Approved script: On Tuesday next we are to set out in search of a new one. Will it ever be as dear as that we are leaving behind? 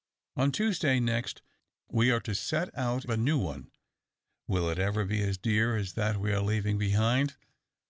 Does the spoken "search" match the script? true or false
false